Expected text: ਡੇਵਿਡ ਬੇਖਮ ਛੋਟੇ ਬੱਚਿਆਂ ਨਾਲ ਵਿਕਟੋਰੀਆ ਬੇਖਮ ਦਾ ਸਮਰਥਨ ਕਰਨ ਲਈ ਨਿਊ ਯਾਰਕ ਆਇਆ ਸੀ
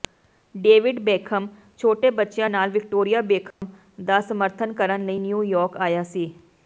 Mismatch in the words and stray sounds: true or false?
true